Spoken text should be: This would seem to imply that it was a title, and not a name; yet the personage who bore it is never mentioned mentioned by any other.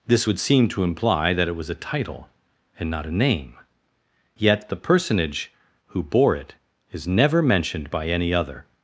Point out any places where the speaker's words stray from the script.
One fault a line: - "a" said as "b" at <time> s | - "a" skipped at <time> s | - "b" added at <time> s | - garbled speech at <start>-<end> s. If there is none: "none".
- "mentioned" skipped at 7.9 s